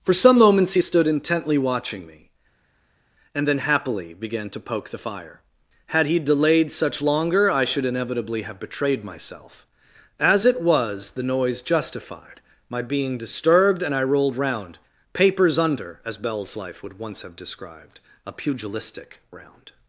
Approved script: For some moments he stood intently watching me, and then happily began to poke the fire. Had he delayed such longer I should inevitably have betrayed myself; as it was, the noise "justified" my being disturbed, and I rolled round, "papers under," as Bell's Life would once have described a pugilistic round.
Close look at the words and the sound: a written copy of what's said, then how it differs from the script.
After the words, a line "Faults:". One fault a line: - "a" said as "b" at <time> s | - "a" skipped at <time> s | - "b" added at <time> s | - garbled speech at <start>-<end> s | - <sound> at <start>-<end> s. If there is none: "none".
For some moments he stood intently watching me, and then happily began to poke the fire. Had he delayed such longer I should inevitably have betrayed myself; as it was, the noise "justified" my being disturbed, and I rolled round, "papers under," as Bell's Life would once have described a pugilistic round.
Faults:
none